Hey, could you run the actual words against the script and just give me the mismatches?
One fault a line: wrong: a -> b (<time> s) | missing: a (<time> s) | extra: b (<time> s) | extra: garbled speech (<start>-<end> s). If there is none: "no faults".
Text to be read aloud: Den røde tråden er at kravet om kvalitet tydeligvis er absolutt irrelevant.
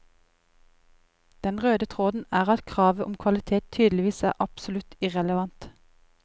no faults